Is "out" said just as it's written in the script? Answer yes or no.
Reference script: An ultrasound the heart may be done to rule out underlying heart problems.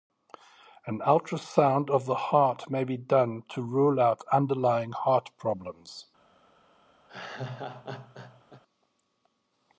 yes